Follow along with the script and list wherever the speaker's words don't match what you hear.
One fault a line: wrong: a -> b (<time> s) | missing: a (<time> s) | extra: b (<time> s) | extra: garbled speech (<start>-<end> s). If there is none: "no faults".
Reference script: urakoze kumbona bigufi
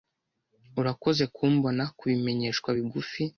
extra: kubimenyeshwa (2.0 s)